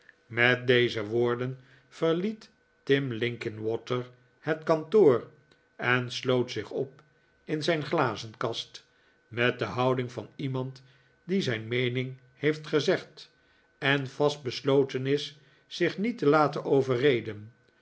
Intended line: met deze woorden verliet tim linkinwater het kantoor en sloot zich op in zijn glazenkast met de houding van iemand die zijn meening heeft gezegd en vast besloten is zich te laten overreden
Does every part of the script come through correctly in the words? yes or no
no